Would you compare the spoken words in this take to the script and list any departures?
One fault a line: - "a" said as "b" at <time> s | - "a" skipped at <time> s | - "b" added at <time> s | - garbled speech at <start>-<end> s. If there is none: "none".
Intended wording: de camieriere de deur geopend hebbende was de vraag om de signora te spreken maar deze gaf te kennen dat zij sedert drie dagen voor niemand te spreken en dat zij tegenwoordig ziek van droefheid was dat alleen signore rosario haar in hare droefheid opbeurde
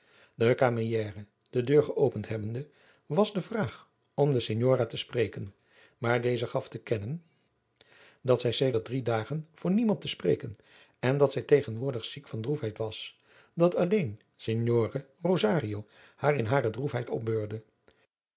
none